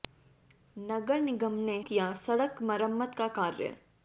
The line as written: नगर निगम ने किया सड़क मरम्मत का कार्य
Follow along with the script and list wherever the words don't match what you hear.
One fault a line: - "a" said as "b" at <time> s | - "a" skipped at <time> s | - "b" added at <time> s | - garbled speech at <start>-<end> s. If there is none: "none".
none